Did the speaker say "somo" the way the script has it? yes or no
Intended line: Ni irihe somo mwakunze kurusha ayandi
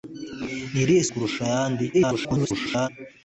no